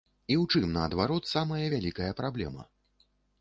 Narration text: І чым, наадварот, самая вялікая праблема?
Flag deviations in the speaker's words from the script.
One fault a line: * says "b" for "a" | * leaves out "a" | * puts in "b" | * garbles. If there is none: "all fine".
* puts in "ў"